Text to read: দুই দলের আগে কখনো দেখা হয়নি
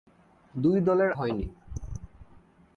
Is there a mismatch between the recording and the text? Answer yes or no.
yes